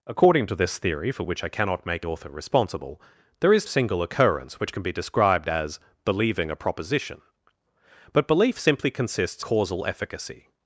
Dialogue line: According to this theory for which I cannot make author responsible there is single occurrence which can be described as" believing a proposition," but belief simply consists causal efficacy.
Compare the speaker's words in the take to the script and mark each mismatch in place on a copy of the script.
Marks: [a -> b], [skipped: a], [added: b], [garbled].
According to this theory for which I cannot make author responsible there is single occurrence which can be described as" believing a proposition," but belief simply consists causal efficacy.